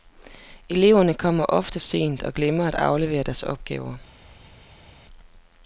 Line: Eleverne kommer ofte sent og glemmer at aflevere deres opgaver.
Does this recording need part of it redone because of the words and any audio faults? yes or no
no